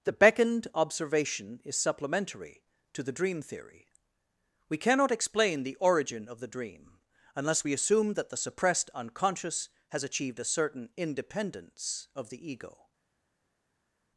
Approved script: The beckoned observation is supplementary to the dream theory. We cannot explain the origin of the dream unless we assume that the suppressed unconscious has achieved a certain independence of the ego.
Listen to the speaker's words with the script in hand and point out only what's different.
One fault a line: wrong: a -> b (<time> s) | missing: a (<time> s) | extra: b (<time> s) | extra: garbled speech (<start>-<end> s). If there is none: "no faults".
no faults